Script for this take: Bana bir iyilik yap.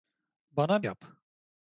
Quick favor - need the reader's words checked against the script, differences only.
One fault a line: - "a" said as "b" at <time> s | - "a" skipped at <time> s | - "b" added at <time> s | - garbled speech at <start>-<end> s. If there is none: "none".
- "bir iyilik" skipped at 0.8 s